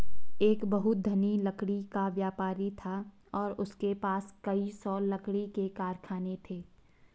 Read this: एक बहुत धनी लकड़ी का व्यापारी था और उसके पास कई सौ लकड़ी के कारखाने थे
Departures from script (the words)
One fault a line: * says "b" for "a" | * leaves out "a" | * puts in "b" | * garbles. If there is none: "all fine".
all fine